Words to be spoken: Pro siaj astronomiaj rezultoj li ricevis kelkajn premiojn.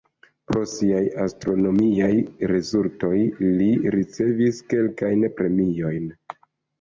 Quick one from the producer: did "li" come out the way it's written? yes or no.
yes